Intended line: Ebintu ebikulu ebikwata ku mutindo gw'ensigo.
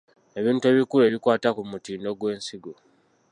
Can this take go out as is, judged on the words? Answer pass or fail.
pass